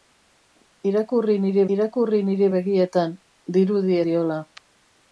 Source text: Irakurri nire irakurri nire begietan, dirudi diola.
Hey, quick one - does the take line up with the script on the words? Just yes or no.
yes